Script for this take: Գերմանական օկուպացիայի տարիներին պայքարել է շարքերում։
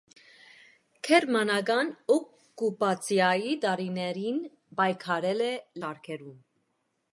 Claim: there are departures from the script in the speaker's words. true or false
false